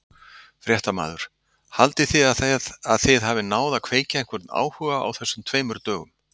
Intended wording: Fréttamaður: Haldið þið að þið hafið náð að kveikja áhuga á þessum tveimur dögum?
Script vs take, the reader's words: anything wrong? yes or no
yes